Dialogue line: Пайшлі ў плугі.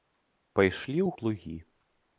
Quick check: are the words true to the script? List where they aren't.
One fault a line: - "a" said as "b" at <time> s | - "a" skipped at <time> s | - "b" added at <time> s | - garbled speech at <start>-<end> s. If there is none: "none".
none